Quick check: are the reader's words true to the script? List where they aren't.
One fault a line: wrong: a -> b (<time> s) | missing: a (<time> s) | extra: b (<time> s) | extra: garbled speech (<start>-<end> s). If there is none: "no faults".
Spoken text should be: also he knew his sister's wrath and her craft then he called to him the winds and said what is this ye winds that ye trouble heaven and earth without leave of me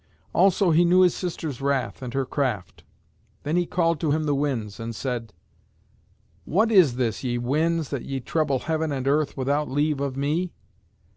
no faults